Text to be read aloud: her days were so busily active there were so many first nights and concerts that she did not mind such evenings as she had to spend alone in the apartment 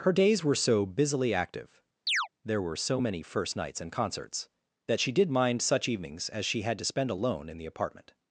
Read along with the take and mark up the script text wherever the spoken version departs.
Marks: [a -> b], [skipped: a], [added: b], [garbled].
her days were so busily active there were so many first nights and concerts that she did [skipped: not] mind such evenings as she had to spend alone in the apartment